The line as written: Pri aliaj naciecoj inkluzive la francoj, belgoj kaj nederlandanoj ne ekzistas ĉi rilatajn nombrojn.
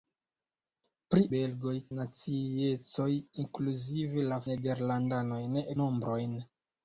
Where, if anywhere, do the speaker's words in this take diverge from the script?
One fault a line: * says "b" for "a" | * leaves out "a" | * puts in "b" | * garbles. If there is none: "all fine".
* says "belgoj" for "aliaj"
* leaves out "francoj belgoj kaj"
* leaves out "ekzistas ĉi rilatajn"